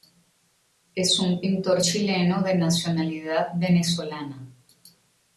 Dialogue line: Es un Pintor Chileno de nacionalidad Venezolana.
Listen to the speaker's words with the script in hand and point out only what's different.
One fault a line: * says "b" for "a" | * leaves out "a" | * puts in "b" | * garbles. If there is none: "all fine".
all fine